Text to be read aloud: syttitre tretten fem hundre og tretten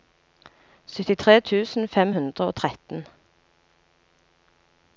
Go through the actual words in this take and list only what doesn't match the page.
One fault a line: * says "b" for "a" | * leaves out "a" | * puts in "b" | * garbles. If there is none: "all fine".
* says "tusen" for "tretten"